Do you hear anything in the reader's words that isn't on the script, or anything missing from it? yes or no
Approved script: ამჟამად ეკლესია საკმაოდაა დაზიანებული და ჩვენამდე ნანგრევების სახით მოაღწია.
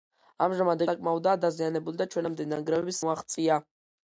yes